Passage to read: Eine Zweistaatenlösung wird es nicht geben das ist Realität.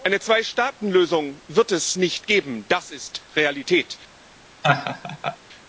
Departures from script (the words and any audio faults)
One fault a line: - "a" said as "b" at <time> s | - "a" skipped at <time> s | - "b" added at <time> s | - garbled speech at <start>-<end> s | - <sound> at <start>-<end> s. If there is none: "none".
- laugh at 4.6-5.4 s